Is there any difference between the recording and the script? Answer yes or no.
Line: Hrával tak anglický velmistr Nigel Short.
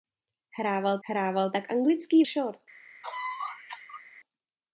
yes